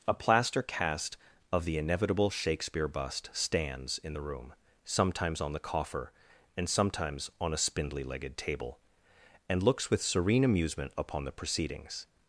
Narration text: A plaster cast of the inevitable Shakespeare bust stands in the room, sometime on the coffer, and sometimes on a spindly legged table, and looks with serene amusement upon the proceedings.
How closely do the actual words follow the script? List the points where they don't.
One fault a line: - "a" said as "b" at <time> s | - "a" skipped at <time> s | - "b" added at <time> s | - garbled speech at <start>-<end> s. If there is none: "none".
- "sometime" said as "sometimes" at 4.9 s